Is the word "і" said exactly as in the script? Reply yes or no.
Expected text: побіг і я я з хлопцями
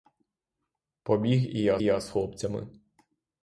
yes